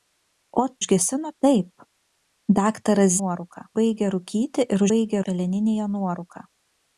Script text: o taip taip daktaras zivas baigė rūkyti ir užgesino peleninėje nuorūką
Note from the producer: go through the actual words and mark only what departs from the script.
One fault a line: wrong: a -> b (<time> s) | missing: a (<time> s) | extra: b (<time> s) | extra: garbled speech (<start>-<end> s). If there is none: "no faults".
wrong: taip -> užgesino (0.8 s)
wrong: zivas -> nuorūką (3.2 s)
wrong: užgesino -> baigė (4.9 s)